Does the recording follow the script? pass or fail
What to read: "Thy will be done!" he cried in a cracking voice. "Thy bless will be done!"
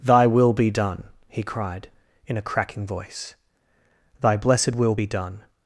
fail